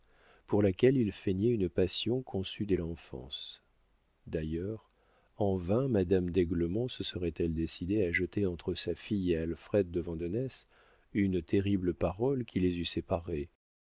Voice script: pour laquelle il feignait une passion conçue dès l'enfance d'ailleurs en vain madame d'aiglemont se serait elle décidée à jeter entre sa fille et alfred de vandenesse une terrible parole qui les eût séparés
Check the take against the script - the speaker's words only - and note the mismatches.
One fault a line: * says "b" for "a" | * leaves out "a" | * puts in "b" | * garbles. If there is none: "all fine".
all fine